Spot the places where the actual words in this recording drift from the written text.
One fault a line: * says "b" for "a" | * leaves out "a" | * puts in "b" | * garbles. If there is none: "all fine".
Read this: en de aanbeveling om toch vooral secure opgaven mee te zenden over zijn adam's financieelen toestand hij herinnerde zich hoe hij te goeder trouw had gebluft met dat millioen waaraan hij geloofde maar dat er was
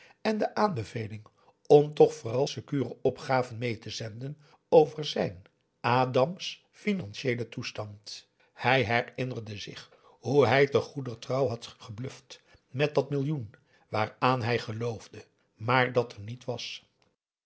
* puts in "niet"